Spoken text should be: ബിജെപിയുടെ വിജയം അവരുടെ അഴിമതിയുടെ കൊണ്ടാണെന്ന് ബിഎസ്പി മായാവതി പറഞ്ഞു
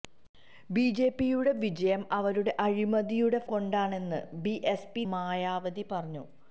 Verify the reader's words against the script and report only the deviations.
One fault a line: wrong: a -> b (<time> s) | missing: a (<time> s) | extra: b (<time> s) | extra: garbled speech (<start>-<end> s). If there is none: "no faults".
no faults